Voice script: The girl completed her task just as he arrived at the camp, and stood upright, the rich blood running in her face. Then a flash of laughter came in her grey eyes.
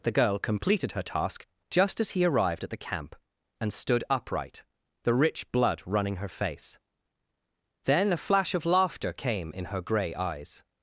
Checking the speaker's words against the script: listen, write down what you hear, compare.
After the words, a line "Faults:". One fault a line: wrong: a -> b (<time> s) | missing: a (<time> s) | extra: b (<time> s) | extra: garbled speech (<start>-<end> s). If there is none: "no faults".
The girl completed her task just as he arrived at the camp, and stood upright, the rich blood running her face. Then a flash of laughter came in her grey eyes.
Faults:
missing: in (6.2 s)